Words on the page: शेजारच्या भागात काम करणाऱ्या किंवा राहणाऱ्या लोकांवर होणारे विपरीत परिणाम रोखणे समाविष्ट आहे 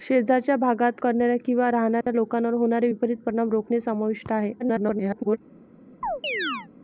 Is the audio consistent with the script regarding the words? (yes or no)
no